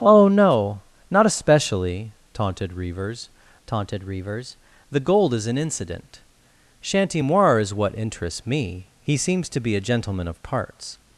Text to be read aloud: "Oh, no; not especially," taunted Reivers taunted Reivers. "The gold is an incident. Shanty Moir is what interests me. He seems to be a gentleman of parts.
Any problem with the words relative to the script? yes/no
no